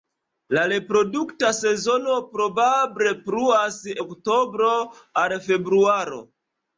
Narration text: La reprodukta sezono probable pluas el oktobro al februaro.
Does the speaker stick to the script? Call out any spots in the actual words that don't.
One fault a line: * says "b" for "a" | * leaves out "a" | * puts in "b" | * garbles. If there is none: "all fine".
* leaves out "el"